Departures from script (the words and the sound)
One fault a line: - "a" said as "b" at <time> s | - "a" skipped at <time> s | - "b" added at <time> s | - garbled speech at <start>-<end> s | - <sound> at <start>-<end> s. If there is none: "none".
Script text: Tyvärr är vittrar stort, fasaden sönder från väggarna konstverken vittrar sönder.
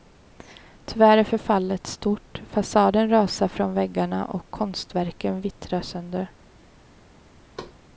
- "vittrar" said as "förfallet" at 1.2 s
- "sönder" said as "rasar" at 3.1 s
- "och" added at 4.2 s
- thud at 7.6-7.8 s